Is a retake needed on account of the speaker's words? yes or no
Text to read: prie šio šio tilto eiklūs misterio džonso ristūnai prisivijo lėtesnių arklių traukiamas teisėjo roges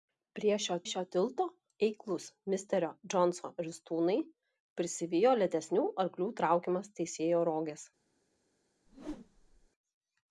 no